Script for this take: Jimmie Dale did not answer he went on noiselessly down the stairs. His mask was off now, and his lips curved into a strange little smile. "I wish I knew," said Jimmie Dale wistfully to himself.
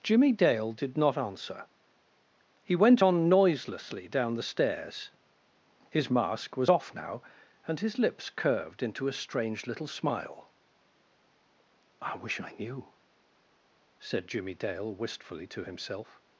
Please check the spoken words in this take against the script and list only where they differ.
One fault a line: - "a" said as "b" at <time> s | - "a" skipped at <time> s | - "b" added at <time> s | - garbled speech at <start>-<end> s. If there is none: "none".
none